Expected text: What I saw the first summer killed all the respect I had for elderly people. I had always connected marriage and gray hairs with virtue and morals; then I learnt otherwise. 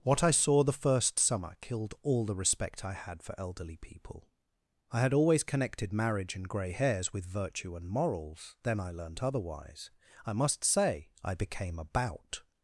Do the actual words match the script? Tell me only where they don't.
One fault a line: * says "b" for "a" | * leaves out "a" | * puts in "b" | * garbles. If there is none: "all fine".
* puts in "I must say I became about"